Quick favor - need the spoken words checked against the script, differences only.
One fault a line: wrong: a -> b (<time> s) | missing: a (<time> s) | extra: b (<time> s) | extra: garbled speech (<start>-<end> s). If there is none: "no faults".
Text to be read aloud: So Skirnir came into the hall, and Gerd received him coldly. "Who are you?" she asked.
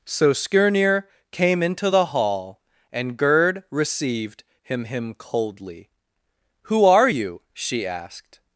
extra: him (4.9 s)